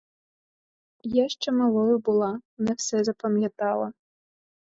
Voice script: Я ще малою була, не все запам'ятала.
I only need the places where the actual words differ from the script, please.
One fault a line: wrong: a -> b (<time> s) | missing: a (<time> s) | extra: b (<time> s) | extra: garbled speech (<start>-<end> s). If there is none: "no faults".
no faults